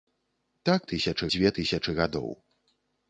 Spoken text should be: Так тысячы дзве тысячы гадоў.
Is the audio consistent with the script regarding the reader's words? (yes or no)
yes